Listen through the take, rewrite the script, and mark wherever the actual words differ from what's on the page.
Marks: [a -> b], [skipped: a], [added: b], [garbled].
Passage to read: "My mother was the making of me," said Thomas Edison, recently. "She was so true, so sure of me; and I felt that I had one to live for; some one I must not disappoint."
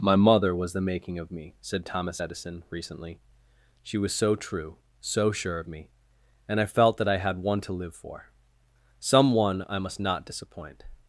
"My mother was the making of me," said Thomas Edison, recently. "She was so true, so sure of me; and I felt that I had one to live for; some one I must not disappoint."